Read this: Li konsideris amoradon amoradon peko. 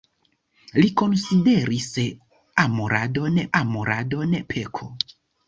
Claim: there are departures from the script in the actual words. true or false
false